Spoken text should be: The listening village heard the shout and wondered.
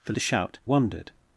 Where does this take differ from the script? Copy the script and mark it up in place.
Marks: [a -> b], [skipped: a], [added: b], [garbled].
The [skipped: listening village heard] the shout [skipped: and] wondered.